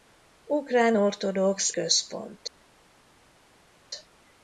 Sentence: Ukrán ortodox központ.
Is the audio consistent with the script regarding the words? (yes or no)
yes